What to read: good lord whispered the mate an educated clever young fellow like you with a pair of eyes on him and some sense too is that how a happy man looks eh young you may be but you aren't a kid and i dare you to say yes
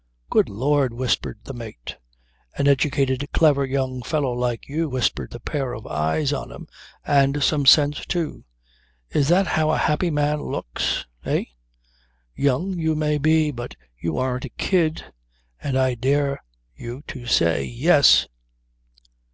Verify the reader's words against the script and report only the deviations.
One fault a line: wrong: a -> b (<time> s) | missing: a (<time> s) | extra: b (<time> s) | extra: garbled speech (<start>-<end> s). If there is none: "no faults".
wrong: with -> whispered (4.9 s)